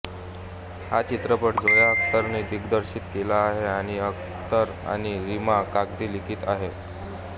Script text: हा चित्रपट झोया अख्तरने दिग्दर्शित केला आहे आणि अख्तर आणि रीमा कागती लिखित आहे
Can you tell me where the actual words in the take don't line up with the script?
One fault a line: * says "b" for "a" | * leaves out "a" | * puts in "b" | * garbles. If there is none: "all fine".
all fine